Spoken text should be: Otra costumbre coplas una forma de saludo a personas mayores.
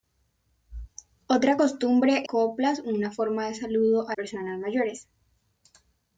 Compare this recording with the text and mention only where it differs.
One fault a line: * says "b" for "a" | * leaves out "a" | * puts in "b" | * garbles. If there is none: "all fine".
all fine